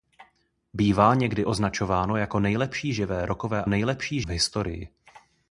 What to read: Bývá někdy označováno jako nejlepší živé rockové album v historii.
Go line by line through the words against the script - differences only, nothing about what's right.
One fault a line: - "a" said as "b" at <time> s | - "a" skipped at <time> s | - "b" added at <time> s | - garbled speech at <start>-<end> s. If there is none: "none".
- "album" said as "nejlepší" at 3.7 s